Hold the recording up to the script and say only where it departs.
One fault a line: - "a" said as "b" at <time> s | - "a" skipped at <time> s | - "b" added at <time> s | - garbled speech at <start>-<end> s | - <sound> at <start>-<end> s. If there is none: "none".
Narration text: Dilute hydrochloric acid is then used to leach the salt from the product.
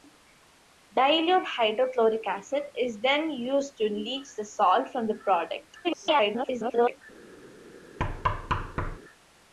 - garbled speech at 5.8-7.0 s
- thud at 8.0-9.0 s